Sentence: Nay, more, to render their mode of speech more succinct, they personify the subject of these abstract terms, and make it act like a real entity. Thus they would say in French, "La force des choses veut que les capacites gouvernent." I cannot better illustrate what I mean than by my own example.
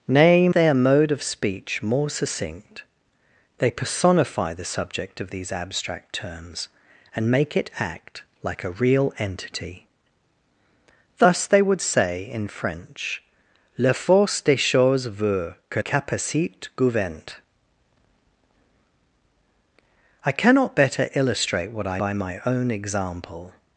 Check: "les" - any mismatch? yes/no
yes